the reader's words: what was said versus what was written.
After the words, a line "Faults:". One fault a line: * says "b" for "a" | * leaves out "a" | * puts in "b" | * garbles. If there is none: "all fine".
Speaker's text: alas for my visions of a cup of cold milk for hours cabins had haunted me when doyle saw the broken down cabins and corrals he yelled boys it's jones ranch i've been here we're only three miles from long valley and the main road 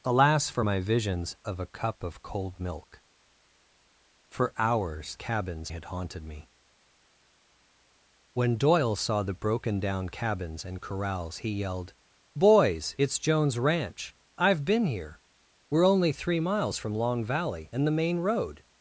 alas for my visions of a cup of cold milk for hours cabins had haunted me when doyle saw the broken down cabins and corrals he yelled boys it's jones ranch i've been here we're only three miles from long valley and the main road
Faults:
all fine